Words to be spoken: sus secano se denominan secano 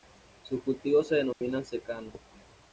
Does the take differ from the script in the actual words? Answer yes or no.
yes